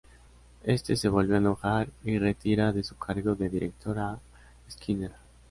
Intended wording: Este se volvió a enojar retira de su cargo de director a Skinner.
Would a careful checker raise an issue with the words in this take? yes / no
yes